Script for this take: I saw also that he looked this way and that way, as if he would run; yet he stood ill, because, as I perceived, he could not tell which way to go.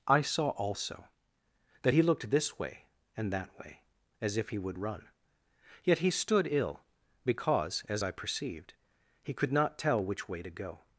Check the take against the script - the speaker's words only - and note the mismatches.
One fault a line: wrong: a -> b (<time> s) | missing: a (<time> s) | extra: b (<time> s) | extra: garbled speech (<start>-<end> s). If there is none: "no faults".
no faults